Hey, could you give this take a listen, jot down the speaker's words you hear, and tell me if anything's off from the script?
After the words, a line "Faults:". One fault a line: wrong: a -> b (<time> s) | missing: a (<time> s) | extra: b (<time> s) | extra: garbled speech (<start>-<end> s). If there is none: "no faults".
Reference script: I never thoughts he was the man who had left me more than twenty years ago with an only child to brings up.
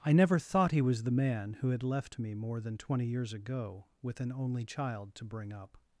I never thought he was the man who had left me more than twenty years ago with an only child to bring up.
Faults:
wrong: thoughts -> thought (0.4 s)
wrong: brings -> bring (5.2 s)